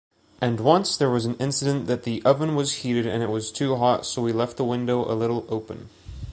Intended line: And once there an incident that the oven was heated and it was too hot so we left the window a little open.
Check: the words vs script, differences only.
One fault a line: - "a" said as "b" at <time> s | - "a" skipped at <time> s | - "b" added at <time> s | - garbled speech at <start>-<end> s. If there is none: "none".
- "was" added at 1.1 s